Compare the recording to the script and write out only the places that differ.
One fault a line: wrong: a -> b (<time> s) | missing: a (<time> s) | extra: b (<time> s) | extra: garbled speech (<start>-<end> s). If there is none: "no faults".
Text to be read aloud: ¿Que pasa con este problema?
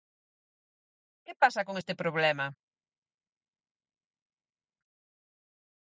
no faults